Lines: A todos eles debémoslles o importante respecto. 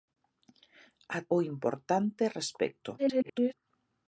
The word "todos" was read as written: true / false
false